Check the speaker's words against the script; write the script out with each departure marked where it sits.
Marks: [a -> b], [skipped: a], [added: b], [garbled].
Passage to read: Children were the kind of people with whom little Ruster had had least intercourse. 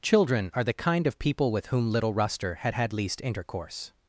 Children [were -> are] the kind of people with whom little Ruster had had least intercourse.